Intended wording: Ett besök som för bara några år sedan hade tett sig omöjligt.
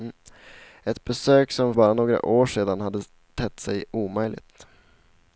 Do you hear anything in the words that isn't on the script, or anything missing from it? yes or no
yes